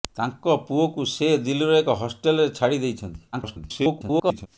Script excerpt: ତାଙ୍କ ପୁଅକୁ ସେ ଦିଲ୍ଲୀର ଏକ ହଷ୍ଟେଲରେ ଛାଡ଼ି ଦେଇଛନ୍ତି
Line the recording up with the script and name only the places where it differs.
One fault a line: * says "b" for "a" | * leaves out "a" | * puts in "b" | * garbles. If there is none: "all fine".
* garbles